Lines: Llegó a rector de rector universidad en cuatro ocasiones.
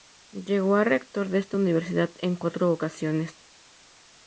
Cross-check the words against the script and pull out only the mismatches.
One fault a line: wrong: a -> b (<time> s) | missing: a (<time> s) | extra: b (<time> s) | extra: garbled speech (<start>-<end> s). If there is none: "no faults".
wrong: rector -> esta (1.4 s)